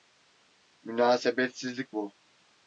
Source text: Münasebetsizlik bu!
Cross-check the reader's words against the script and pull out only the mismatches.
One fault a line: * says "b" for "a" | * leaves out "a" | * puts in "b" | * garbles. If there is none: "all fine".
all fine